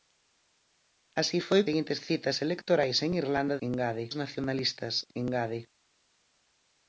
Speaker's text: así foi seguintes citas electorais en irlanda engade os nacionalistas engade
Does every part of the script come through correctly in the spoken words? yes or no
yes